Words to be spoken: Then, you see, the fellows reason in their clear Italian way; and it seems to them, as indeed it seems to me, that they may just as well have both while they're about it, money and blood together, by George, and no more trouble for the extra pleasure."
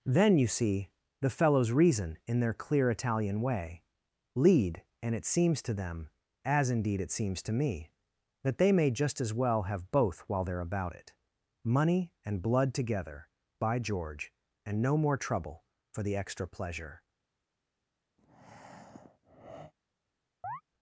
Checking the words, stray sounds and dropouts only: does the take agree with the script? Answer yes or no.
no